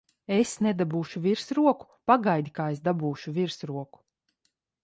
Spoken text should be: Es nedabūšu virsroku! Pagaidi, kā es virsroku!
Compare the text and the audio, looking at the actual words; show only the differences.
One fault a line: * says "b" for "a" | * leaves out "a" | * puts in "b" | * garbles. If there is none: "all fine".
* puts in "dabūšu"